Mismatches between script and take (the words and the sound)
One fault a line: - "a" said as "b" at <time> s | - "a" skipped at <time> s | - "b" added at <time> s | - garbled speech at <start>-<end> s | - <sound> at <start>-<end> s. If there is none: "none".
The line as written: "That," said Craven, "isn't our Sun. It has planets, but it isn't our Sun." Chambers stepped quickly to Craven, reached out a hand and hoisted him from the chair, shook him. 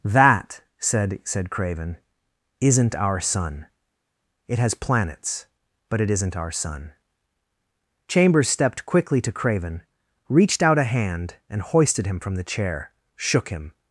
- "said" added at 1.2 s